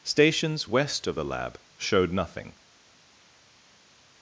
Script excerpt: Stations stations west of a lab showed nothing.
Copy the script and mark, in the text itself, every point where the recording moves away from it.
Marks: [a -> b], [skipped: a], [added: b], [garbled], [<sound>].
Stations [skipped: stations] west of [a -> the] lab showed nothing.